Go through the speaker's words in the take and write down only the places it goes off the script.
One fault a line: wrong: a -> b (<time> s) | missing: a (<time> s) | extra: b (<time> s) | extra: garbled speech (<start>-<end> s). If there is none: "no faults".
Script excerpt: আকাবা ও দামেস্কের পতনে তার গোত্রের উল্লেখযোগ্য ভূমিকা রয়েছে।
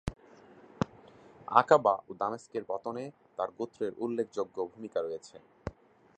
no faults